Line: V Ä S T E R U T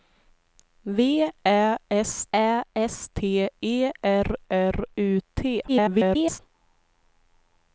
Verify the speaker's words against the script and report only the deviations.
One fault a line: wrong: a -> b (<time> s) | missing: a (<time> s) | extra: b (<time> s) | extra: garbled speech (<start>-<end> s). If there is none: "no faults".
extra: Ä S (2.3 s)
extra: R (4.5 s)
extra: garbled speech (5.7-6.4 s)